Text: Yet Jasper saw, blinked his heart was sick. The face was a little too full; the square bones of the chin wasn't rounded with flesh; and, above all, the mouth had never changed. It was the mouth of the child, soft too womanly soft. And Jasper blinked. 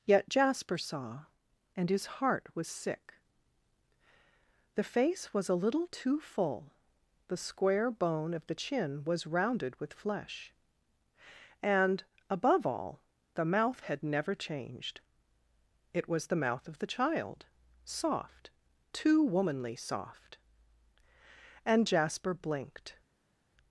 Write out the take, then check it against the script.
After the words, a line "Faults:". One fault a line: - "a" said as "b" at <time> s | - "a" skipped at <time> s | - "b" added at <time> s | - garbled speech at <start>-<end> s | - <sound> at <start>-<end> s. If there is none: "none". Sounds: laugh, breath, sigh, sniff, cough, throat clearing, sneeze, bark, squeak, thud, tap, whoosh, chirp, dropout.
Yet Jasper saw, and his heart was sick. The face was a little too full; the square bone of the chin was rounded with flesh; and, above all, the mouth had never changed. It was the mouth of the child, soft too womanly soft. And Jasper blinked.
Faults:
- "blinked" said as "and" at 1.8 s
- "bones" said as "bone" at 7.9 s
- "wasn't" said as "was" at 9.0 s